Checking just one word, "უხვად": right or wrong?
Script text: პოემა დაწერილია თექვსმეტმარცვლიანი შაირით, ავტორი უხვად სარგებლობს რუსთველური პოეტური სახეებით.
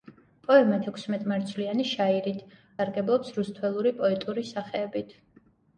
wrong